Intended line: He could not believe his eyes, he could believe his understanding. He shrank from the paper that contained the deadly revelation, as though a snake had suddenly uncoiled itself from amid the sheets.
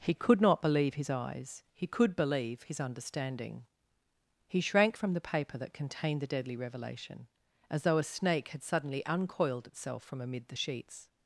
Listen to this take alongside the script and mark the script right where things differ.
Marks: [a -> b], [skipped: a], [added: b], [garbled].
He could not believe his eyes, he could believe his understanding. He shrank from the paper that contained the deadly revelation, as though a snake had suddenly uncoiled itself from amid the sheets.